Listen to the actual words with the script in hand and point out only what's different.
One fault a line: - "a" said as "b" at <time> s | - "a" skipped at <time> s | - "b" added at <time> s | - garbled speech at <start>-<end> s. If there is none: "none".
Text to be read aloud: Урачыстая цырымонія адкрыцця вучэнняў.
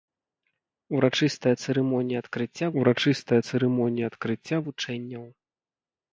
- "урачыстая цырымонія адкрыцця" added at 2.8 s